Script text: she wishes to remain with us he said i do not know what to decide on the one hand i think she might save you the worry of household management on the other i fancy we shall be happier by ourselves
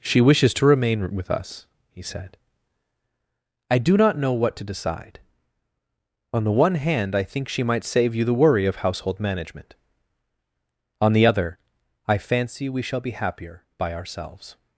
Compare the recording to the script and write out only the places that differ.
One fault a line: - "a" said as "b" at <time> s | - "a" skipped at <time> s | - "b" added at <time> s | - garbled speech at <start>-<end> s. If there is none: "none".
none